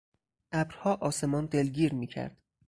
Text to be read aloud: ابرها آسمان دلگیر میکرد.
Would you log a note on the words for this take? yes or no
no